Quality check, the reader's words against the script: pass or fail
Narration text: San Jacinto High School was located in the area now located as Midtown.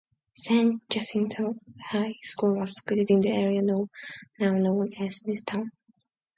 fail